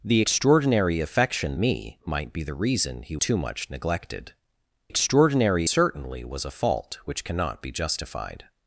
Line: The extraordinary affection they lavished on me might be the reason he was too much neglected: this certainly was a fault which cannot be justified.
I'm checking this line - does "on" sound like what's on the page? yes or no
no